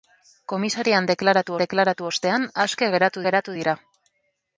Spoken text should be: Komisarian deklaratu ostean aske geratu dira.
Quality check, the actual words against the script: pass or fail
fail